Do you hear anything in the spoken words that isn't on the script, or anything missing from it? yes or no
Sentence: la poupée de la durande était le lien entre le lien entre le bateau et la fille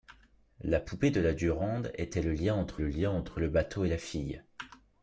no